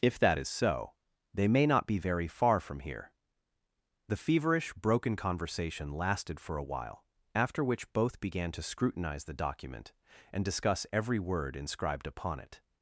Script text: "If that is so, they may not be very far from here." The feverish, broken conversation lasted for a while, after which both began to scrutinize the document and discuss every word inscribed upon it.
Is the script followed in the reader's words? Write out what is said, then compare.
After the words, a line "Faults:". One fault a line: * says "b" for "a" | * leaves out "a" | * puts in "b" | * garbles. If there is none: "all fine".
"If that is so, they may not be very far from here." The feverish, broken conversation lasted for a while, after which both began to scrutinize the document and discuss every word inscribed upon it.
Faults:
all fine